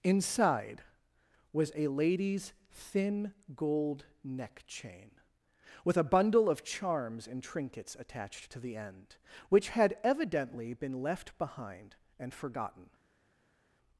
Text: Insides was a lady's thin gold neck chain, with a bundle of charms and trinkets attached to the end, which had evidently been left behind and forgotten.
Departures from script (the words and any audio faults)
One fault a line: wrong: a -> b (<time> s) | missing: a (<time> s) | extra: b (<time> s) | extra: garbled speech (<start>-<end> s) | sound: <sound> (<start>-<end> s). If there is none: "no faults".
wrong: Insides -> Inside (0.0 s)